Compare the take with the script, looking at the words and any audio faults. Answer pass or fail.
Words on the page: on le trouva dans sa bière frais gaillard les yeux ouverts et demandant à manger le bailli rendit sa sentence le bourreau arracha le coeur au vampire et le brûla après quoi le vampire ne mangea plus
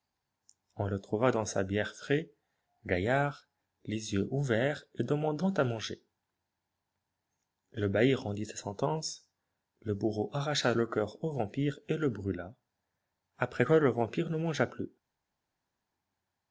pass